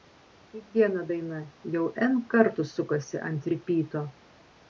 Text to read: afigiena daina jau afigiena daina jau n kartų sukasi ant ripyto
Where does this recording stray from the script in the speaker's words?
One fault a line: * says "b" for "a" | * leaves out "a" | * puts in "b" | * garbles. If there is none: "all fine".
* leaves out "afigiena daina jau"